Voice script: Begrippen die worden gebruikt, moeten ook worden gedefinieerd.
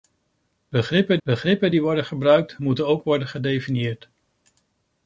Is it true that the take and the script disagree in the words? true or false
true